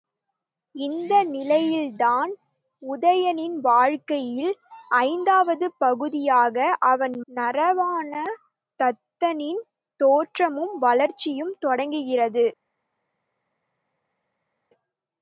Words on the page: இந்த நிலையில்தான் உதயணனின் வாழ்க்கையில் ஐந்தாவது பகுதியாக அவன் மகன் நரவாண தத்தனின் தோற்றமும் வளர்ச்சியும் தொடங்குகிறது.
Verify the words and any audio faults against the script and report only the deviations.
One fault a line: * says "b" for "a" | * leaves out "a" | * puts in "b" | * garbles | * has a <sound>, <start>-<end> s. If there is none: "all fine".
* leaves out "மகன்"